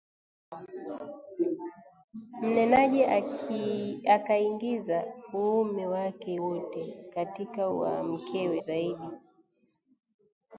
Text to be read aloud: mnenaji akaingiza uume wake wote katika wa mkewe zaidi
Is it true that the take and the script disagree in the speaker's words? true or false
false